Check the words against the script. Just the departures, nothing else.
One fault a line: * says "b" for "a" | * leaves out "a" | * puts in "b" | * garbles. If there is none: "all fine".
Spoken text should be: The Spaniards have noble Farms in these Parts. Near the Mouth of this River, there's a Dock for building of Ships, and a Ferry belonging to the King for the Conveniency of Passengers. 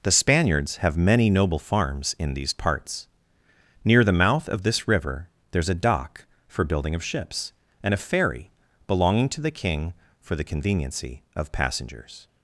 * puts in "many"